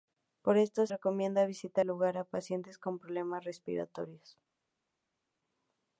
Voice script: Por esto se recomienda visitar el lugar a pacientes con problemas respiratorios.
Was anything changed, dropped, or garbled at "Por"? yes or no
no